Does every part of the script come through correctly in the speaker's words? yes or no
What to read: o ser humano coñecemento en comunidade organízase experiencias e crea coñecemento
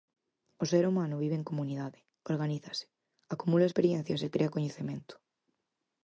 no